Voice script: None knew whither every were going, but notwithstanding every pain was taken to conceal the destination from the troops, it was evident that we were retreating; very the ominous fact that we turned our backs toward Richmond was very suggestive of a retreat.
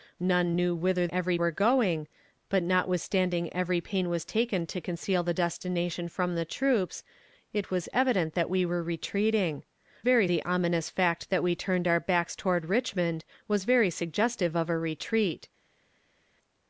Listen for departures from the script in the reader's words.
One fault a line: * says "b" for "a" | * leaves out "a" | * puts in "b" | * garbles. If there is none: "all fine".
all fine